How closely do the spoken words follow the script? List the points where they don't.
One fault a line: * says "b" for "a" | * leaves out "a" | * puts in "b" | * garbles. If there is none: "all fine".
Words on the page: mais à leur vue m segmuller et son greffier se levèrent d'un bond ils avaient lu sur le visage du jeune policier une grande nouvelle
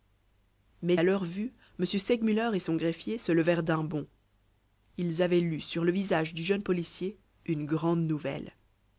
all fine